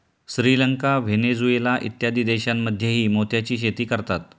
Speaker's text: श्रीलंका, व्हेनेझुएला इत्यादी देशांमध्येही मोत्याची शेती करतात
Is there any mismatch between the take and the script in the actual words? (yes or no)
no